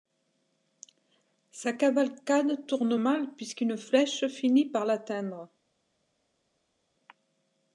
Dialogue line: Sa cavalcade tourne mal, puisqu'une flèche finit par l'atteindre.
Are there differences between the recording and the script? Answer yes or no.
no